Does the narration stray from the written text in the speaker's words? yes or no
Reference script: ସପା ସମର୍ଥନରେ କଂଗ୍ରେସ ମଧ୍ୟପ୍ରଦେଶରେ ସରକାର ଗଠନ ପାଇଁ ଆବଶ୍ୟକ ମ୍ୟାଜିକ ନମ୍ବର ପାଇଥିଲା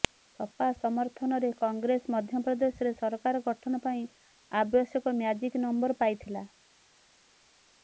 no